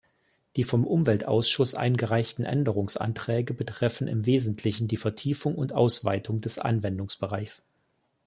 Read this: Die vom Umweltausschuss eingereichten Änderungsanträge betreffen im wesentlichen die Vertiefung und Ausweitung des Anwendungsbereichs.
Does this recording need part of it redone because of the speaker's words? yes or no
no